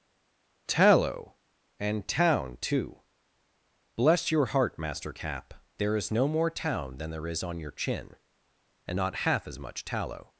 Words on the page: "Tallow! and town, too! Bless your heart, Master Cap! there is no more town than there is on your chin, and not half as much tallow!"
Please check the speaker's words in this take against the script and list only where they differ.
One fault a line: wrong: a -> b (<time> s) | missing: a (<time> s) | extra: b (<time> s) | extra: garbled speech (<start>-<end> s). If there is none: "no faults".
no faults